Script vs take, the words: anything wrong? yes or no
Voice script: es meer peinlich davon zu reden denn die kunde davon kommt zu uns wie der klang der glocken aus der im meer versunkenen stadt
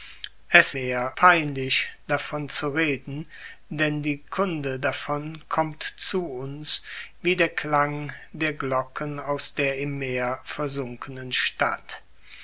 no